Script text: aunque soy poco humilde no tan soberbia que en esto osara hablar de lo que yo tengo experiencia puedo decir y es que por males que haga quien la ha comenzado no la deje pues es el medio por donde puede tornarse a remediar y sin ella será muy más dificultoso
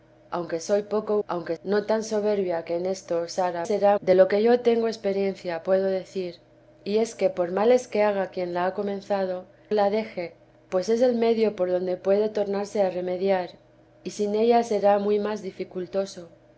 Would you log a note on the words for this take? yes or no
yes